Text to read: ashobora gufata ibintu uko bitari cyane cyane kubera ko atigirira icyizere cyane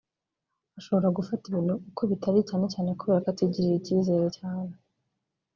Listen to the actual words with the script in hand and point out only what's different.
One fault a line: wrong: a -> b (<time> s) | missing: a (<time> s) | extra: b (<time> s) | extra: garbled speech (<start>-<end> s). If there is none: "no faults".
no faults